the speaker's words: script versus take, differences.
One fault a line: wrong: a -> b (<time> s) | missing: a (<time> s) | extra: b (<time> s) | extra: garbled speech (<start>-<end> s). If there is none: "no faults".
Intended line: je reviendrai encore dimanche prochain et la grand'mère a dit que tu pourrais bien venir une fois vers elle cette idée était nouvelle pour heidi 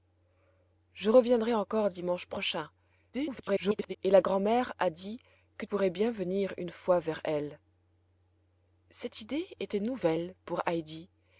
extra: garbled speech (3.1-4.0 s)
missing: tu (5.6 s)